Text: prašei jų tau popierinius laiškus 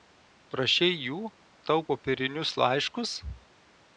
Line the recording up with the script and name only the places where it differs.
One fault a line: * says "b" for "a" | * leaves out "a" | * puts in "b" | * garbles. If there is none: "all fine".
all fine